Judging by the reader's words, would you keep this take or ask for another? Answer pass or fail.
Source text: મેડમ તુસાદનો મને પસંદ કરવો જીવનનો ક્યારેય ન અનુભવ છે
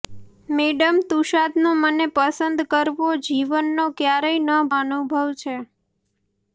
pass